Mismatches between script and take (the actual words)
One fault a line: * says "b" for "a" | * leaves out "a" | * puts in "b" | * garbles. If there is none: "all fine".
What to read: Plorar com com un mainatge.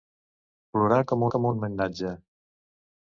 all fine